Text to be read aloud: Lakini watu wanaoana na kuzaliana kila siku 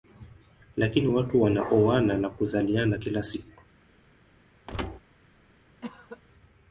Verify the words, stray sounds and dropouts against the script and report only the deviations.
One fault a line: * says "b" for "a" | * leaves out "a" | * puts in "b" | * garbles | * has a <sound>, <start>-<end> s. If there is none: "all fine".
* has a thud, 4.7-5.0 s
* has a cough, 5.8-6.2 s